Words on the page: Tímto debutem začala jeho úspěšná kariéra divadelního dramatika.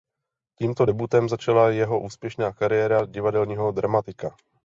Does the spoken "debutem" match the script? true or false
true